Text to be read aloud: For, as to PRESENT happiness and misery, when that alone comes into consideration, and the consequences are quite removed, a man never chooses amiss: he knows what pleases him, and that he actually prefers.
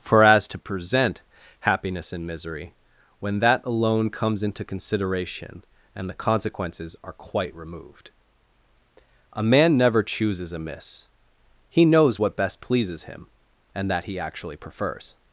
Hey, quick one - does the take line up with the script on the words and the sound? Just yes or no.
no